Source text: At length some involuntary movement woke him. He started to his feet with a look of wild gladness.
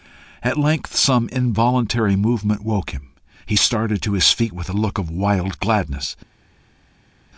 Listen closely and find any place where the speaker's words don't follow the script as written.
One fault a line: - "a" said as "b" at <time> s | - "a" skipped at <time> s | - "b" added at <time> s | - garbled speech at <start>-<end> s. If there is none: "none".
none